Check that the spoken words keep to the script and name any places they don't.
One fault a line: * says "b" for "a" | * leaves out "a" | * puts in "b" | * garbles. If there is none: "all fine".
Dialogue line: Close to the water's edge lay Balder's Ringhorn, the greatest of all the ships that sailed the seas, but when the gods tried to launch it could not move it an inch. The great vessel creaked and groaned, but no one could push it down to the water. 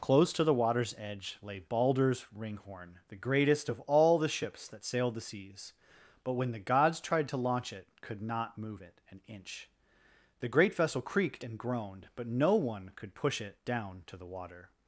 all fine